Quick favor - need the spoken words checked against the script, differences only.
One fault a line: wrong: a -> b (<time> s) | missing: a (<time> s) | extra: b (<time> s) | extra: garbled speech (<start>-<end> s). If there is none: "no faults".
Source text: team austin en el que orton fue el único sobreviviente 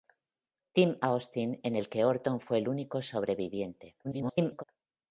extra: garbled speech (4.0-4.6 s)